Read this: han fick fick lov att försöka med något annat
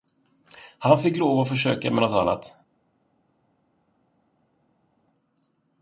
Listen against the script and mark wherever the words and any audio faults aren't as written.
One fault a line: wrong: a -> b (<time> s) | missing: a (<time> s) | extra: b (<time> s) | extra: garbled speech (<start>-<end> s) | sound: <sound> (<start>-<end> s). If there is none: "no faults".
missing: fick (1.2 s)